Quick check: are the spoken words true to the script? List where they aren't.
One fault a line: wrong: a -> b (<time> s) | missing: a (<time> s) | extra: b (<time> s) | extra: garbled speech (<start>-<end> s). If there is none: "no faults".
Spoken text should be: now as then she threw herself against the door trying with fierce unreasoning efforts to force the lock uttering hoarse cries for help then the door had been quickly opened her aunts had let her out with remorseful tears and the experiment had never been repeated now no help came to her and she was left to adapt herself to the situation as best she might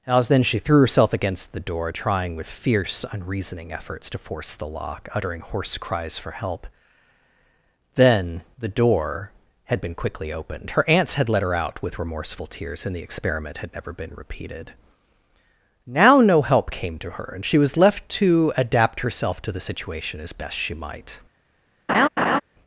missing: now (0.1 s)